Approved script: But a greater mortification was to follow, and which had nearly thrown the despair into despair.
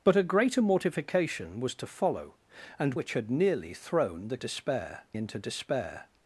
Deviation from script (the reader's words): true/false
false